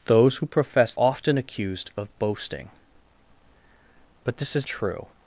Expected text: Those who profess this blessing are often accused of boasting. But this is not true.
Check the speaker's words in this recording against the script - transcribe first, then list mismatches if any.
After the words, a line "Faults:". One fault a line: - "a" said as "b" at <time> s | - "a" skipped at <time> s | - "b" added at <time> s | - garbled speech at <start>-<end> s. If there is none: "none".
Those who profess often accused of boasting. But this is true.
Faults:
- "this blessing are" skipped at 0.9 s
- "not" skipped at 4.7 s